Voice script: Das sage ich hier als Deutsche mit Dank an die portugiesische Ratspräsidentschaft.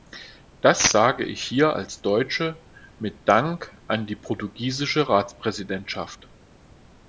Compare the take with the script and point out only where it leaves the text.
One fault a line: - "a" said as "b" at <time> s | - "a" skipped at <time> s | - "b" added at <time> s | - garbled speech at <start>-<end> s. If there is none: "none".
none